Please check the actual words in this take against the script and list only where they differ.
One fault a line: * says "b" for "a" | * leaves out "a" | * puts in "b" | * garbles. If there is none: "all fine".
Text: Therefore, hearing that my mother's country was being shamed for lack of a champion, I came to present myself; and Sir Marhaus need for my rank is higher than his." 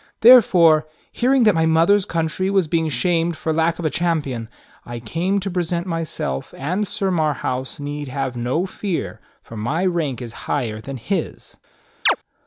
* puts in "have no fear"